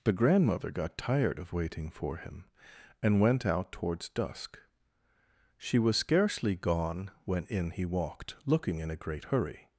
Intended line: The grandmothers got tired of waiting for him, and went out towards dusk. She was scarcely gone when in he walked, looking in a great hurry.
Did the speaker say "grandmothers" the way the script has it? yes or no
no